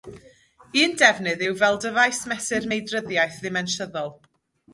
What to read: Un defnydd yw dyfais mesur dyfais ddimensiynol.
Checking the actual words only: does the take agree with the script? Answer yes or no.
no